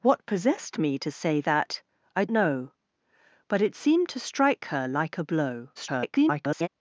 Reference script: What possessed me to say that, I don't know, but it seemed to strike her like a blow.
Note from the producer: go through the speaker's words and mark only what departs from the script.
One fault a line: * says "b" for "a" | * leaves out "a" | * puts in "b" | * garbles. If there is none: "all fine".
* leaves out "don't"
* garbles